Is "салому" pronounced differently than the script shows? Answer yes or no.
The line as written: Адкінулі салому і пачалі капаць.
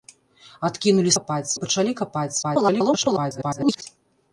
yes